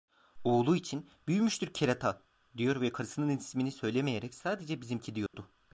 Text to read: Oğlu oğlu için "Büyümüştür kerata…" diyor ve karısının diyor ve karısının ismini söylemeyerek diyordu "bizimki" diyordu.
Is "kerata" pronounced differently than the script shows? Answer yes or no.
no